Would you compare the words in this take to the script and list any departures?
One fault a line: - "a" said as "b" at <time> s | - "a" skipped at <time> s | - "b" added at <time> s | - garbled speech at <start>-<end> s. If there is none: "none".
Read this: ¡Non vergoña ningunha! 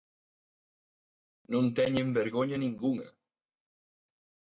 - "teñen" added at 1.8 s